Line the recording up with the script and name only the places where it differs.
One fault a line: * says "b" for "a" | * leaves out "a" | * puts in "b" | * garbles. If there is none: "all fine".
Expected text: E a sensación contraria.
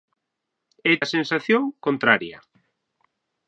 all fine